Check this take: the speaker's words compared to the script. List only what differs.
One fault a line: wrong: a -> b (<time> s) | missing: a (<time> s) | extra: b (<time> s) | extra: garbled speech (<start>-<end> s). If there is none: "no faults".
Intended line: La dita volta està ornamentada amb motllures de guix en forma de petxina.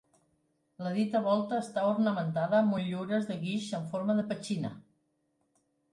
no faults